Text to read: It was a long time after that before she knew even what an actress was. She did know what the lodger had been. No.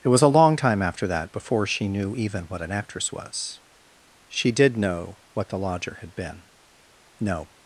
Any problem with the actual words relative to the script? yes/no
no